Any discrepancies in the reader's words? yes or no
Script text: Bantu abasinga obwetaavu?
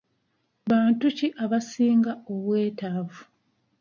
yes